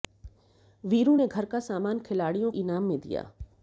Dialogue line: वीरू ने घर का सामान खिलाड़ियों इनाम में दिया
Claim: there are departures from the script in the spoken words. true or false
false